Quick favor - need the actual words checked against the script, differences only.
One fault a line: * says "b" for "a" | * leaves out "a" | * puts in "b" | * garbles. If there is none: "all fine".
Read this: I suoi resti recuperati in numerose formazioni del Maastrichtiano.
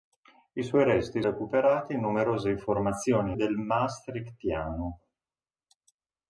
all fine